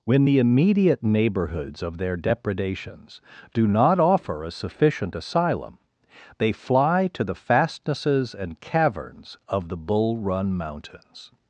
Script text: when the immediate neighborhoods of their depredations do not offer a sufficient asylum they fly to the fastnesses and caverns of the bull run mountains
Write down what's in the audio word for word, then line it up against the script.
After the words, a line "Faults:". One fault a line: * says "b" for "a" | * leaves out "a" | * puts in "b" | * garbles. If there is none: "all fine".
when the immediate neighborhoods of their depredations do not offer a sufficient asylum they fly to the fastnesses and caverns of the bull run mountains
Faults:
all fine